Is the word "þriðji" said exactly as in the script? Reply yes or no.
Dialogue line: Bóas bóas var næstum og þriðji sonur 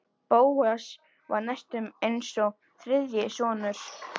yes